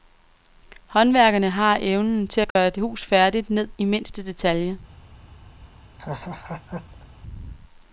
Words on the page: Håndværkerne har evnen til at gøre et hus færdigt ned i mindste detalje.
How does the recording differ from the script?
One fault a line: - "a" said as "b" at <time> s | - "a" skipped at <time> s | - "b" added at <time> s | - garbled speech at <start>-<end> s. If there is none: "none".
none